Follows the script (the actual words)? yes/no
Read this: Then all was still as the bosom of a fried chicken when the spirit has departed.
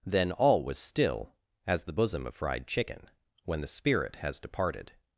no